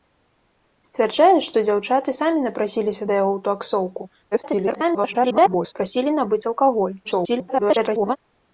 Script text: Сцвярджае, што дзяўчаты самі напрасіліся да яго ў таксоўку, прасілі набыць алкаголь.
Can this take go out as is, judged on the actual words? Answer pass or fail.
fail